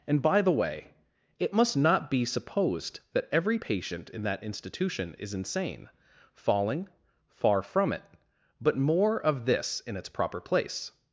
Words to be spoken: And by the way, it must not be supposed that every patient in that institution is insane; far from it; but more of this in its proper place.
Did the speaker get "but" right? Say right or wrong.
right